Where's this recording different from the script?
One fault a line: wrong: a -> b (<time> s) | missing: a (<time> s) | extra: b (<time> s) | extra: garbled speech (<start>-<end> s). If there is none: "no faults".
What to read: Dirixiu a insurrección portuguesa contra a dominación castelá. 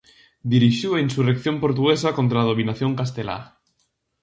no faults